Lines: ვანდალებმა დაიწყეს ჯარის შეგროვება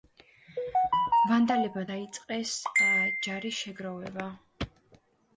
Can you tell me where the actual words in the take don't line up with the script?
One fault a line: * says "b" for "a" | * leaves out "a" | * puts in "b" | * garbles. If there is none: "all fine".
all fine